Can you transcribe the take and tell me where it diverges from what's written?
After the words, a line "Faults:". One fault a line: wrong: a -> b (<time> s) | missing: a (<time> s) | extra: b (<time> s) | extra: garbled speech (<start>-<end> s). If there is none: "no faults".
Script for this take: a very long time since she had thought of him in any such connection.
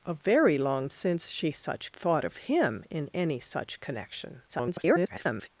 a very long since she such thought of him in any such connection. [garbled]
Faults:
missing: time (0.9 s)
wrong: had -> such (1.5 s)
extra: garbled speech (4.5-5.5 s)